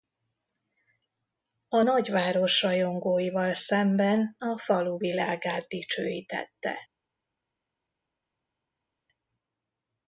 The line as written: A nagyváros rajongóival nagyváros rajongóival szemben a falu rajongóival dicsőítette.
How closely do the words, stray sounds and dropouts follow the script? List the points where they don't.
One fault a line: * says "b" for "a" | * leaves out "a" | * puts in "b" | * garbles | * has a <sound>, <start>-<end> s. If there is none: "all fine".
* leaves out "nagyváros rajongóival"
* says "világát" for "rajongóival"